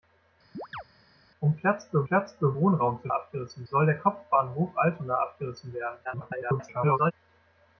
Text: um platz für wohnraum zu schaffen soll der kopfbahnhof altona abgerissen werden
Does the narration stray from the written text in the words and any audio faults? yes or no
yes